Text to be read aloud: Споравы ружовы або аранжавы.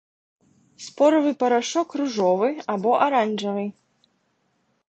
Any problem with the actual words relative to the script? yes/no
yes